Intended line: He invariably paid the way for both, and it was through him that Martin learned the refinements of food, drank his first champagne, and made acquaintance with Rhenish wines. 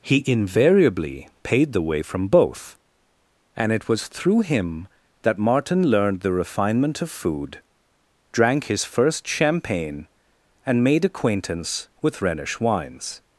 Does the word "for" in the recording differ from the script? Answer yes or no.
yes